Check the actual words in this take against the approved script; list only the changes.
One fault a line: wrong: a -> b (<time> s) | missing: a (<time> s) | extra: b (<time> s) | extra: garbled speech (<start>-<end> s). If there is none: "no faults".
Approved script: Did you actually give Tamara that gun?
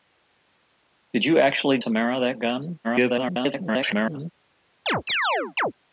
missing: give (1.8 s)
extra: garbled speech (2.8-4.3 s)